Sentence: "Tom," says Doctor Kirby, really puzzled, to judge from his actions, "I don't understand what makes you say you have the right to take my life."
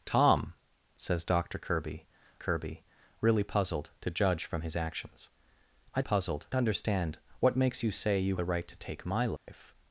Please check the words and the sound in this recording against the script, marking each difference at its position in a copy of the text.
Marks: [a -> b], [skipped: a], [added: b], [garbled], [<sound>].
"Tom," says Doctor Kirby, [added: Kirby] really puzzled, to judge from his actions, "I [don't -> puzzled] understand what makes you say you [skipped: have] the right to take my life." [dropout]